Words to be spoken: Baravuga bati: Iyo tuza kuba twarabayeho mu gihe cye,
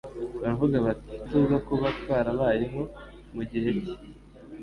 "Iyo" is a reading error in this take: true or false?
true